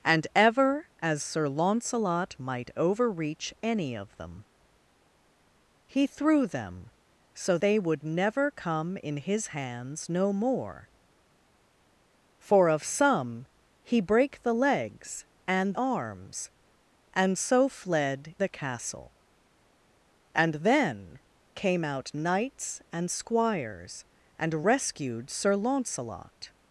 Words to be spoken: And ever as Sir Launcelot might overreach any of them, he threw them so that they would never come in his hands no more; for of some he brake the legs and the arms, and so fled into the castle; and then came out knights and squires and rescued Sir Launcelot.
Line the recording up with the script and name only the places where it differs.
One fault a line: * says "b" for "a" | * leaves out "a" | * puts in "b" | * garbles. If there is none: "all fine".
* leaves out "that"
* leaves out "the"
* leaves out "into"